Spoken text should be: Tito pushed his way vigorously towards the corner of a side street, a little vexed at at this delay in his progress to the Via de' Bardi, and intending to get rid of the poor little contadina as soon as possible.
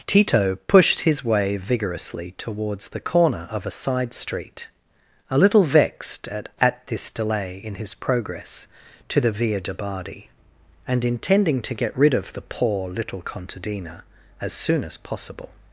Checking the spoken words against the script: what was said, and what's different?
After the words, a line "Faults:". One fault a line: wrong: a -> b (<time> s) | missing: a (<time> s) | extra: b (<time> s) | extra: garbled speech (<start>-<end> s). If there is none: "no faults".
Tito pushed his way vigorously towards the corner of a side street, a little vexed at at this delay in his progress to the Via de' Bardi, and intending to get rid of the poor little contadina as soon as possible.
Faults:
no faults